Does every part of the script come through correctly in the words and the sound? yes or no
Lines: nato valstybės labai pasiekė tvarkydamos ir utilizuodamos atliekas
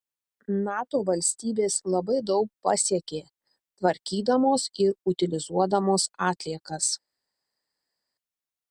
no